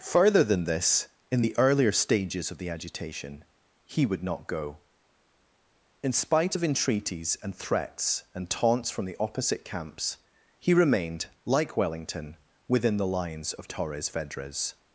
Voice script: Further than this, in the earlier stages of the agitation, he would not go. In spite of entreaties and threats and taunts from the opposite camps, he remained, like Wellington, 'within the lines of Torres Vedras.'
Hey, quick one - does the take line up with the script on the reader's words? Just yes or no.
yes